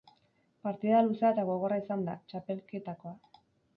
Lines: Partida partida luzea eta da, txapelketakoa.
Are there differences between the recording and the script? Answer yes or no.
yes